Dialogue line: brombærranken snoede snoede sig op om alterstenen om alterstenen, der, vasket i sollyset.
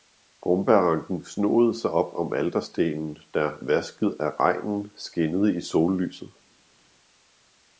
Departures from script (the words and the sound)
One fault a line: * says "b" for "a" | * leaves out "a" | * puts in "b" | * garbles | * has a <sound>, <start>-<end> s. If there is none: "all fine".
* leaves out "snoede"
* says "der vasket af regnen skinnede" for "om alterstenen der vasket"